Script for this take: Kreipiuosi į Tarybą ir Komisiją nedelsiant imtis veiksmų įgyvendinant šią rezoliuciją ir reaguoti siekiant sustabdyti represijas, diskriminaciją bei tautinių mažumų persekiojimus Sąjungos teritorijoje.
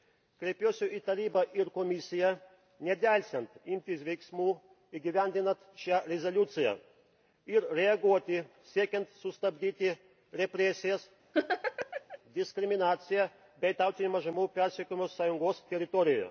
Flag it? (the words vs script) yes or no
no